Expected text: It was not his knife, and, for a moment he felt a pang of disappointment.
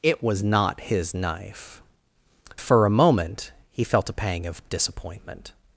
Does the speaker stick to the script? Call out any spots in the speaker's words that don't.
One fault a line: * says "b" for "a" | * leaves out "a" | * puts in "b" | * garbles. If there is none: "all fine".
* leaves out "and"